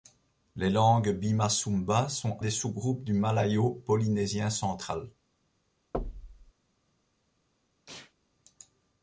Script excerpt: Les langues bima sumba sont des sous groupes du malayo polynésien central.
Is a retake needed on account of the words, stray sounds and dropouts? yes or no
yes